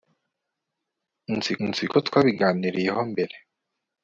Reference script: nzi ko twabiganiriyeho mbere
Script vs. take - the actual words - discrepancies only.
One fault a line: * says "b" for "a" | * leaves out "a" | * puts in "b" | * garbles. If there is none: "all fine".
* puts in "nzi"